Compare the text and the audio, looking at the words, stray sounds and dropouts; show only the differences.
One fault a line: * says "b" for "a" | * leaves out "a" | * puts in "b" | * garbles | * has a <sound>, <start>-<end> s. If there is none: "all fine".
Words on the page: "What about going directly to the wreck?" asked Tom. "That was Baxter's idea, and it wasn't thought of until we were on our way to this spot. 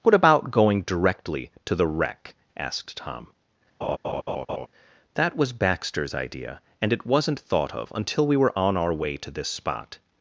* has a laugh, 3.8-4.7 s